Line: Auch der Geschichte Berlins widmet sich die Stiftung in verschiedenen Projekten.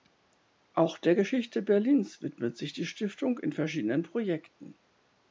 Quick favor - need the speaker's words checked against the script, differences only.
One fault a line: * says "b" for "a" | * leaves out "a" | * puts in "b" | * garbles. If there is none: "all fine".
all fine